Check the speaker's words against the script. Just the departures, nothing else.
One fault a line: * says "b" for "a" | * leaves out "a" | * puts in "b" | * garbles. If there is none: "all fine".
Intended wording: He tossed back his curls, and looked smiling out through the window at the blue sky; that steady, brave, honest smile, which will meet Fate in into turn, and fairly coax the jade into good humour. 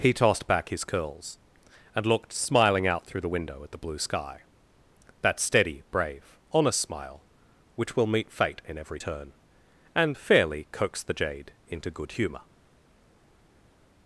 * says "every" for "into"